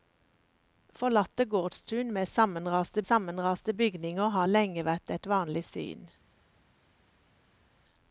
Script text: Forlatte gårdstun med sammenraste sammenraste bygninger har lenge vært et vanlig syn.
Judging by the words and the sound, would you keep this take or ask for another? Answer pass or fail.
pass